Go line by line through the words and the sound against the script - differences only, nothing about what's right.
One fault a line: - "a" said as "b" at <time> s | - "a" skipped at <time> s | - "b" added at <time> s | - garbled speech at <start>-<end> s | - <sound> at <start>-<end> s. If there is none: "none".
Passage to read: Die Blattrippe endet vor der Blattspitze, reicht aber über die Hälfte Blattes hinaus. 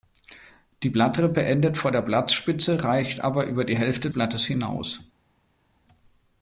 none